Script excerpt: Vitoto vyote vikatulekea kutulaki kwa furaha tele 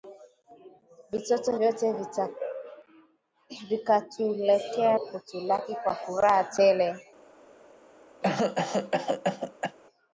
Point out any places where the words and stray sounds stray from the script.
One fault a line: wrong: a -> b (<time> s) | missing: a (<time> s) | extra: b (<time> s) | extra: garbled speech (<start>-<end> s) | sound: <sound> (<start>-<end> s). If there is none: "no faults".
sound: cough (8.2-9.8 s)